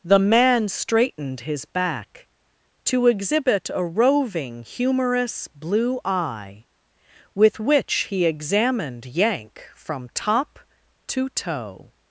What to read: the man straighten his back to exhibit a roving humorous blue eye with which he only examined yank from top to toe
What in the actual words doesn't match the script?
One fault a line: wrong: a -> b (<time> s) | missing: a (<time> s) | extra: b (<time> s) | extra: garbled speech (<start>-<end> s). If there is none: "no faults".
wrong: straighten -> straightened (0.7 s)
missing: only (8.2 s)